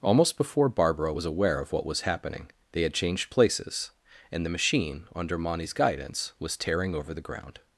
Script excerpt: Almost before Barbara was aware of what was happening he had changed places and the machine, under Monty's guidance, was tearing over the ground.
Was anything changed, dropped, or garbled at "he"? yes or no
yes